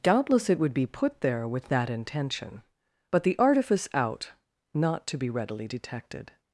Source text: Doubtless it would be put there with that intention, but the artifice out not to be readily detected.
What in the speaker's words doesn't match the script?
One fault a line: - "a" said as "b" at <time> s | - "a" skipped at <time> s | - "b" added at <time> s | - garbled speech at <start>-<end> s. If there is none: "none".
none